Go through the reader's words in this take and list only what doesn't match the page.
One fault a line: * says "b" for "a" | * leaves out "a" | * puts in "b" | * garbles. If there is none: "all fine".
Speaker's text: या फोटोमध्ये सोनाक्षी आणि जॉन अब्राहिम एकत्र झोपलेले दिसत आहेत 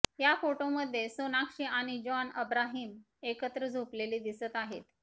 all fine